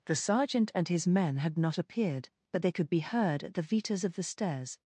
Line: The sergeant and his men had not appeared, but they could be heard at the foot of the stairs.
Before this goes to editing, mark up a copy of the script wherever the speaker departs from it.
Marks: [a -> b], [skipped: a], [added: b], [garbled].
The sergeant and his men had not appeared, but they could be heard at the [foot -> vitas] of the stairs.